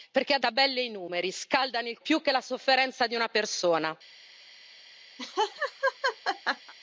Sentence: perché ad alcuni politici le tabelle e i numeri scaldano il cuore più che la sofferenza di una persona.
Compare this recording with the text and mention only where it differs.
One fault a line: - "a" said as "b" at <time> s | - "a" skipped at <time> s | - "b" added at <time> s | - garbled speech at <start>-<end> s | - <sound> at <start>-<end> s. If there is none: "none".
- "alcuni politici le" skipped at 0.4 s
- "cuore" skipped at 2.0 s
- laugh at 5.2-6.7 s